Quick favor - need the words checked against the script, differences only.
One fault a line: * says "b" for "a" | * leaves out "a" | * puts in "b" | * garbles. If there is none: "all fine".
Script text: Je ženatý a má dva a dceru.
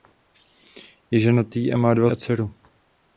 all fine